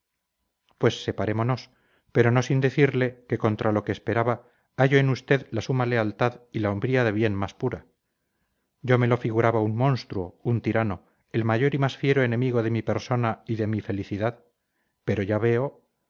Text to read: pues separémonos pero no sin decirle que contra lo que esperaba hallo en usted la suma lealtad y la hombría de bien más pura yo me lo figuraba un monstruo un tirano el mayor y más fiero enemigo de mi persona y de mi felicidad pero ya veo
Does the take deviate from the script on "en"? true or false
false